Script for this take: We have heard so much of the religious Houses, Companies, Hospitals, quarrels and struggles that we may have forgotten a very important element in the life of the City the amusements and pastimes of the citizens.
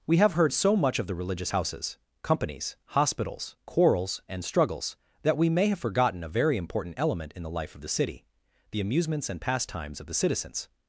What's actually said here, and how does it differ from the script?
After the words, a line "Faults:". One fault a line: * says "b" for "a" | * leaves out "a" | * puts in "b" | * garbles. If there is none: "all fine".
We have heard so much of the religious Houses, Companies, Hospitals, quarrels and struggles that we may have forgotten a very important element in the life of the City the amusements and pastimes of the citizens.
Faults:
all fine